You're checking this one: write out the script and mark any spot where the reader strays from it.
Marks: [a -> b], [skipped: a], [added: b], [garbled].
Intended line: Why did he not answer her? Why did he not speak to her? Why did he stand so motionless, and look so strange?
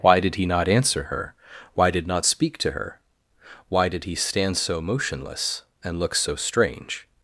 Why did he not answer her? Why did [skipped: he] not speak to her? Why did he stand so motionless, and look so strange?